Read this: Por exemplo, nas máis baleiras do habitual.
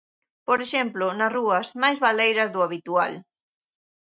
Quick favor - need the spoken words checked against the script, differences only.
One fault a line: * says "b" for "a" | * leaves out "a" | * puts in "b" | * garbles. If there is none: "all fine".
* puts in "rúas"